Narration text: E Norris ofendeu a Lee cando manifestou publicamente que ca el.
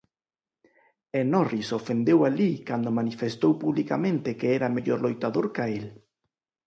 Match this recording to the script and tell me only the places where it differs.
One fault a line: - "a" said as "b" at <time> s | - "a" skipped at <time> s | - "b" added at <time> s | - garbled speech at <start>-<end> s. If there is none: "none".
- "era mellor loitador" added at 4.6 s